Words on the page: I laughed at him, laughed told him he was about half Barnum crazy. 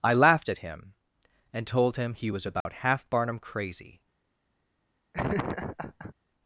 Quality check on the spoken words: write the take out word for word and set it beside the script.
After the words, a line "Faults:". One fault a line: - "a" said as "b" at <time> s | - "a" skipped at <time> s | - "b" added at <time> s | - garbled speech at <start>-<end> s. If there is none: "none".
I laughed at him, and told him he was about half Barnum crazy.
Faults:
- "laughed" said as "and" at 1.5 s